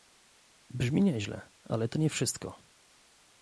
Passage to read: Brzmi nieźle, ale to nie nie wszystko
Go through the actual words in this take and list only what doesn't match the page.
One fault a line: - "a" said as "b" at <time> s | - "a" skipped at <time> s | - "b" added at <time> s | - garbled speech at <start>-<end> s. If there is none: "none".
- "nie" skipped at 2.1 s